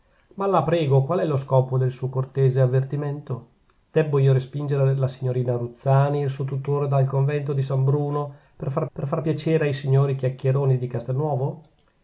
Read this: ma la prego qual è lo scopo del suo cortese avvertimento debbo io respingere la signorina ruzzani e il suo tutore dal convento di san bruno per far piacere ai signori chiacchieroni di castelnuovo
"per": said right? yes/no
yes